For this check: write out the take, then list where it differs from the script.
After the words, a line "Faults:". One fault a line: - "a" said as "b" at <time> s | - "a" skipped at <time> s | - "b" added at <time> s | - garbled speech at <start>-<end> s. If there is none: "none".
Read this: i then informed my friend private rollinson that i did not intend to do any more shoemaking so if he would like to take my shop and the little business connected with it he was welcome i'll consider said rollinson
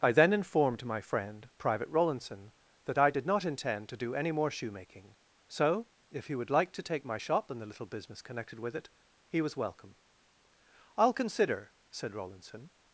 i then informed my friend private rollinson that i did not intend to do any more shoemaking so if he would like to take my shop and the little business connected with it he was welcome i'll consider said rollinson
Faults:
none